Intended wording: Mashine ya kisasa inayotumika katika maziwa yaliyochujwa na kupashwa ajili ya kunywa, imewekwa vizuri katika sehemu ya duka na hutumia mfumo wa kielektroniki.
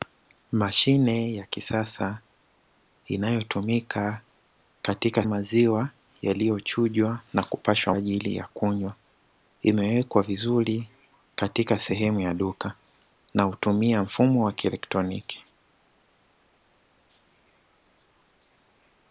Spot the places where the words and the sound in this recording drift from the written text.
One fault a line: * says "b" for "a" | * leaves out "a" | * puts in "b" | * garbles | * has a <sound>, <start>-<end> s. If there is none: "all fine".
all fine